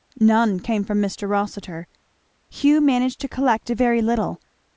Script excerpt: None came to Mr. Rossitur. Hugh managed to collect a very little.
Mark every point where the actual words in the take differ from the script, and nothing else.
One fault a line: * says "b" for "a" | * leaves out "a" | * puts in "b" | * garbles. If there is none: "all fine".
* says "from" for "to"